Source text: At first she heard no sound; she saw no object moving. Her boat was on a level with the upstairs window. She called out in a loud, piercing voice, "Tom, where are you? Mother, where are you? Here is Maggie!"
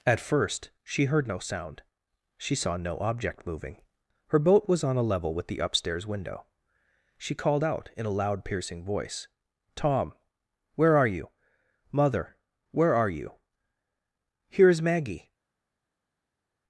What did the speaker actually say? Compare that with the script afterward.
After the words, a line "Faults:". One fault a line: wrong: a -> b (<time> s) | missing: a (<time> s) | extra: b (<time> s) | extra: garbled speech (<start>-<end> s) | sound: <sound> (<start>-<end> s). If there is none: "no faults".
At first she heard no sound; she saw no object moving. Her boat was on a level with the upstairs window. She called out in a loud, piercing voice, "Tom, where are you? Mother, where are you? Here is Maggie!"
Faults:
no faults